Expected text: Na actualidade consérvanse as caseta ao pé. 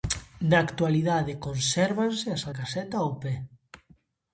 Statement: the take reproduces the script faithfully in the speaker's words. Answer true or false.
true